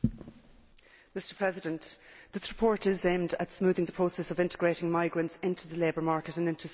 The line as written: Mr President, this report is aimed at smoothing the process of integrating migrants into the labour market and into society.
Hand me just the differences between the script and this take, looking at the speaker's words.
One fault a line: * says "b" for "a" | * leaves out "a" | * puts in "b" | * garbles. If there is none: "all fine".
all fine